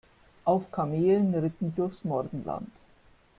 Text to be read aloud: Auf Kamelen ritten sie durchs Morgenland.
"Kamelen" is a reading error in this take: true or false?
false